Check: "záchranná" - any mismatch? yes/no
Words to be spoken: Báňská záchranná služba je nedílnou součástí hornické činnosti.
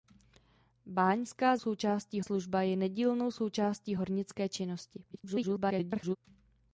yes